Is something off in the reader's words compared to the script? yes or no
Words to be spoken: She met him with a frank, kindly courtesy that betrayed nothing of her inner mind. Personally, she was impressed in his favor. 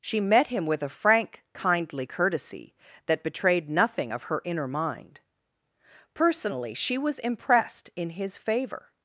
no